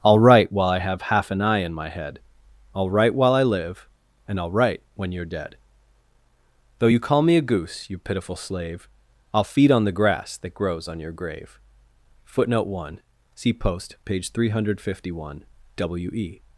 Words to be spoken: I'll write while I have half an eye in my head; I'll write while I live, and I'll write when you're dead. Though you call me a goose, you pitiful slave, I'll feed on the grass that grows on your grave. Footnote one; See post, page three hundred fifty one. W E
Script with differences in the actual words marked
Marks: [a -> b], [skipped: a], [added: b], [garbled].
I'll write while I have half an eye in my head; I'll write while I live, and I'll write when you're dead. Though you call me a goose, you pitiful slave, I'll feed on the grass that grows on your grave. Footnote one; See post, page three hundred fifty one. W E